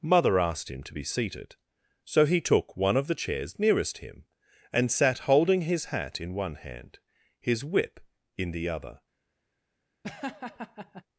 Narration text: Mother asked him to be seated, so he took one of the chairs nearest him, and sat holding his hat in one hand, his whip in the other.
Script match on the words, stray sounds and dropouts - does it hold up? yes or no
no